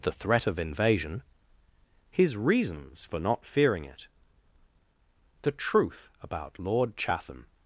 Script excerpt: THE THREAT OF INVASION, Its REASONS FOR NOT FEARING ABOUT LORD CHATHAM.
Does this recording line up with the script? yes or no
no